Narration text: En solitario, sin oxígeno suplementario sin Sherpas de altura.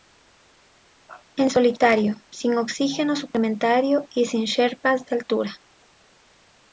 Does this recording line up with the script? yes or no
no